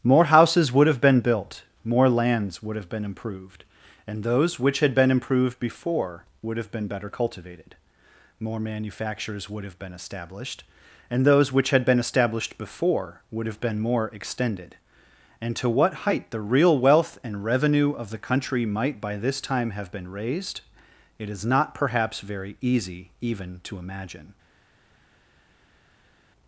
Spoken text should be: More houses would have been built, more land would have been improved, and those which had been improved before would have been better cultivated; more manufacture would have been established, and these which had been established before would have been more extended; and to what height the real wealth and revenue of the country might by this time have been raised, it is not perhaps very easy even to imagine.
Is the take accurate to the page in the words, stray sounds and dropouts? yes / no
no